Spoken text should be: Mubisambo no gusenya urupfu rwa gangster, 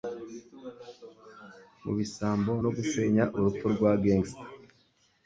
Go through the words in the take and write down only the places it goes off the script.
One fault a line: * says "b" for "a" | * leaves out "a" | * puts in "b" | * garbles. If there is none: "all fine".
all fine